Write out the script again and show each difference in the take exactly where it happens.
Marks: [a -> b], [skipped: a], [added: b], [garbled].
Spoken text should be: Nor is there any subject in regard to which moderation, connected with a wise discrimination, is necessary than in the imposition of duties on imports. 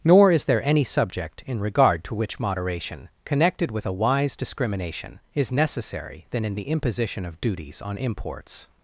Nor is there any subject in regard to which moderation, connected with a wise discrimination, is necessary than in the imposition of duties on imports.